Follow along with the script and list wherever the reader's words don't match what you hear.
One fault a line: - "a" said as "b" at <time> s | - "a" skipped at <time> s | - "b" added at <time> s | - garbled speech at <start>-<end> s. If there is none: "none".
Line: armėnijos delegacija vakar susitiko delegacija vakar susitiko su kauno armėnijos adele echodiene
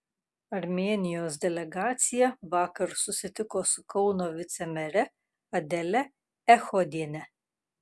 - "delegacija vakar susitiko" skipped at 3.6 s
- "armėnijos" said as "vicemere" at 4.4 s